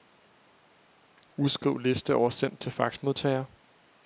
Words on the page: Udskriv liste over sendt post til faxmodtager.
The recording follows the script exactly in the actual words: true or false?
false